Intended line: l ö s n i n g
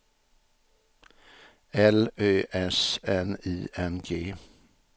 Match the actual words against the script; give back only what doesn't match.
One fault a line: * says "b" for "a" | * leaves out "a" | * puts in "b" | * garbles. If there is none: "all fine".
all fine